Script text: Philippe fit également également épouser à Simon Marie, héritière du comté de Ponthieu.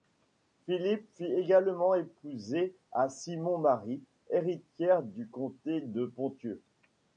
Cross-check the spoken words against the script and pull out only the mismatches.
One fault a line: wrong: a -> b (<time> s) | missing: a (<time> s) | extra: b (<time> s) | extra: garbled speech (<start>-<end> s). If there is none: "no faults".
missing: également (1.9 s)